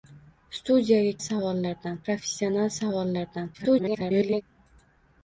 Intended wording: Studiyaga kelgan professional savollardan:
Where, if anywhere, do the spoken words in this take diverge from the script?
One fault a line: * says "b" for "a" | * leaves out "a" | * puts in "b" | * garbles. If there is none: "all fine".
* says "savollardan" for "kelgan"
* garbles